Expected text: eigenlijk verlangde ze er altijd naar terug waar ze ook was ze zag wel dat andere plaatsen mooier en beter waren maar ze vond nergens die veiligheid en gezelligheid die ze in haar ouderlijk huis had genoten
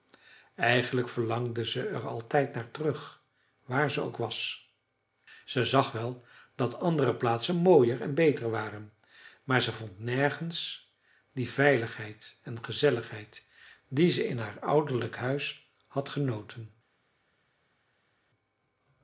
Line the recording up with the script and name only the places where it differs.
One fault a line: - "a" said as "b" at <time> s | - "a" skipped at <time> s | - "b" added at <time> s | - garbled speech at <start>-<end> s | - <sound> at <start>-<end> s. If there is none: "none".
none